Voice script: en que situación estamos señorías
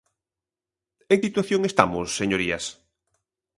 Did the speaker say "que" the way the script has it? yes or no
no